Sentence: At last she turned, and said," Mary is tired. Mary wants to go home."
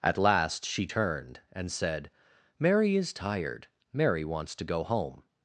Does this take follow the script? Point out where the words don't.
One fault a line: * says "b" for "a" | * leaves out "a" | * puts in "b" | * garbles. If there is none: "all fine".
all fine